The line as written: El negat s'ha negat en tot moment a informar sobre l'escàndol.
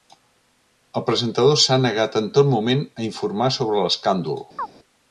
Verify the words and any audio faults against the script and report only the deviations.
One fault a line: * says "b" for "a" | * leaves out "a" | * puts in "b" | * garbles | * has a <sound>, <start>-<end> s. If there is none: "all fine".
* says "presentador" for "negat"
* has a chirp, 4.6-4.7 s